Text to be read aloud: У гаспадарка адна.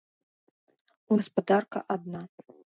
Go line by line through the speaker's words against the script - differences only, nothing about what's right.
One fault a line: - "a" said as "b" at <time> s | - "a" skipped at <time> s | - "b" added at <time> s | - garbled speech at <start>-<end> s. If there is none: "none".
none